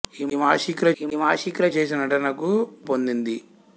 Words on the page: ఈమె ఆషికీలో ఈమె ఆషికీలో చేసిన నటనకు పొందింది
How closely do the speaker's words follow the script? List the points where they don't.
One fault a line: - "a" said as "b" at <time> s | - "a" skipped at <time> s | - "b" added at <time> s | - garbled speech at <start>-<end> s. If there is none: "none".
none